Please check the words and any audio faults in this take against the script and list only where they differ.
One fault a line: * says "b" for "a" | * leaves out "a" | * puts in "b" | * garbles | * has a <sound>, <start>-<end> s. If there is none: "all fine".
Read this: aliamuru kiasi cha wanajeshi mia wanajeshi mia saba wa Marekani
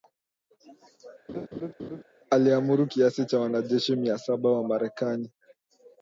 * has a laugh, 1.3-2.0 s
* leaves out "wanajeshi mia"